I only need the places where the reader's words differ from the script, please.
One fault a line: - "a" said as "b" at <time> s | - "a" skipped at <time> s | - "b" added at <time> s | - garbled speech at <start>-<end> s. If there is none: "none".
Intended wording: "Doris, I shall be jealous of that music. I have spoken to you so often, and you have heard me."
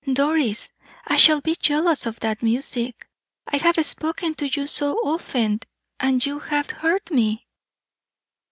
none